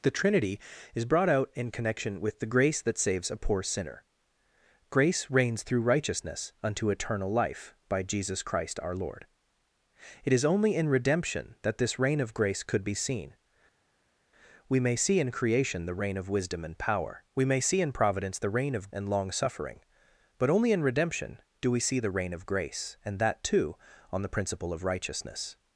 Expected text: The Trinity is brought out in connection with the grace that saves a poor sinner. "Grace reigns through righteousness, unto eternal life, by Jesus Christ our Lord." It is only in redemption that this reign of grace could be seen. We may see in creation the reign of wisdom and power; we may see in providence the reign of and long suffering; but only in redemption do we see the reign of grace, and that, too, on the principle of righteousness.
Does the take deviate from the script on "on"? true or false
false